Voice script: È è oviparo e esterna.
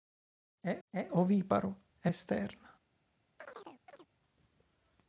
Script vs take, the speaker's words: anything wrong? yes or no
no